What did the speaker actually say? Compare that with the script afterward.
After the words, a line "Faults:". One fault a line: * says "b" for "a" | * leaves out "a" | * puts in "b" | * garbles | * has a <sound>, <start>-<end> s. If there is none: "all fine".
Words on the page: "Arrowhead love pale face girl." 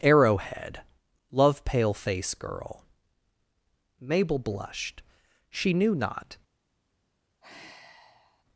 "Arrowhead love pale face girl." Mabel blushed, she knew not
Faults:
* puts in "Mabel blushed she knew not"
* has a sigh, 7.4-8.4 s